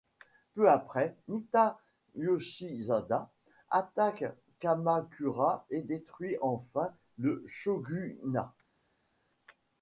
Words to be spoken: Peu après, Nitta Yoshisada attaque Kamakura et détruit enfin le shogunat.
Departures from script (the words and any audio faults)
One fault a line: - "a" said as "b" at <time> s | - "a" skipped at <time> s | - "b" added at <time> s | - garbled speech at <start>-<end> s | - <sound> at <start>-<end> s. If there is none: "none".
none